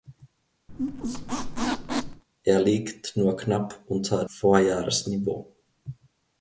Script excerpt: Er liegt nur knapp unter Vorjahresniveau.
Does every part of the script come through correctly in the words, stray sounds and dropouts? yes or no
no